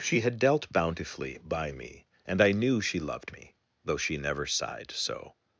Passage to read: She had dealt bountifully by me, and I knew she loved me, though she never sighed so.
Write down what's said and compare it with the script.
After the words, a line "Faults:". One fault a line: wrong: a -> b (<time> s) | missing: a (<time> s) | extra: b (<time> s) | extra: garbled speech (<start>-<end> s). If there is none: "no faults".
She had dealt bountifully by me, and I knew she loved me, though she never sighed so.
Faults:
no faults